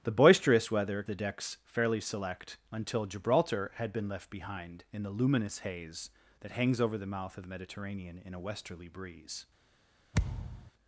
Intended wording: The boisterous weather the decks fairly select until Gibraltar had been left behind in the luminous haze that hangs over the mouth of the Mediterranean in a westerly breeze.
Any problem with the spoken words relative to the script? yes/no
no